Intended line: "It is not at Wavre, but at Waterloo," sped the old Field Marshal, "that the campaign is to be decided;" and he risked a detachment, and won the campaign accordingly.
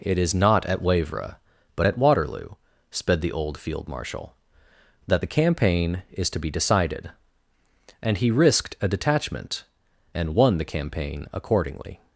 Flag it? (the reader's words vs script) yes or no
no